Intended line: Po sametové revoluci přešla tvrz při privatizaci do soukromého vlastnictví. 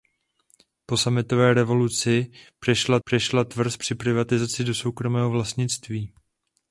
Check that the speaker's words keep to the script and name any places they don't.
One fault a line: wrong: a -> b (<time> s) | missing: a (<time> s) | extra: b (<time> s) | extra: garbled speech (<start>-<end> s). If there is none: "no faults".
extra: přešla (3.0 s)